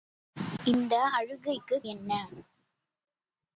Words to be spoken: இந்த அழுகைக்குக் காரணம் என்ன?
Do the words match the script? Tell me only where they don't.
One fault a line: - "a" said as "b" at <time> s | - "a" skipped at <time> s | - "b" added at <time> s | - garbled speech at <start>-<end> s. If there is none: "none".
- "காரணம்" skipped at 1.9 s